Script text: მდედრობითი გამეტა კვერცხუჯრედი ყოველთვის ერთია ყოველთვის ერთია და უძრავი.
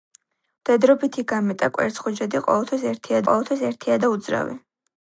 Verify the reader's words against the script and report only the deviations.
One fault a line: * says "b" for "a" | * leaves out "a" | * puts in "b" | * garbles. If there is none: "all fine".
all fine